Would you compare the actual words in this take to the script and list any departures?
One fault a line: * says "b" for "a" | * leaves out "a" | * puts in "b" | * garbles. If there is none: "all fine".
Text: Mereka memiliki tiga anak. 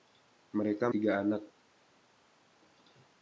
* leaves out "memiliki"